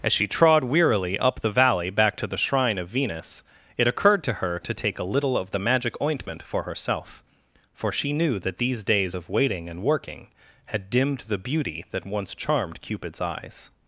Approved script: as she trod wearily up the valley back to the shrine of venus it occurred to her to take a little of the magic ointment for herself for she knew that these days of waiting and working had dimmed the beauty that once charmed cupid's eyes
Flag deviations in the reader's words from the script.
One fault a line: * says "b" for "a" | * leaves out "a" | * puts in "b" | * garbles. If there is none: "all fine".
all fine